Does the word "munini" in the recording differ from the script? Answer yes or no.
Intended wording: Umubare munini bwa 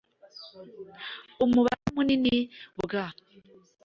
no